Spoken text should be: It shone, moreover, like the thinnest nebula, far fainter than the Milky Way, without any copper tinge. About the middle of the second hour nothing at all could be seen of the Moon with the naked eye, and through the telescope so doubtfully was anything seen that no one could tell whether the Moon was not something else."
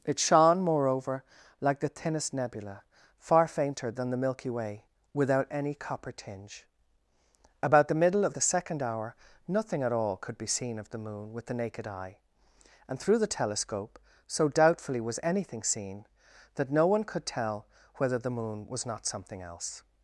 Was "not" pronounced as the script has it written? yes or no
yes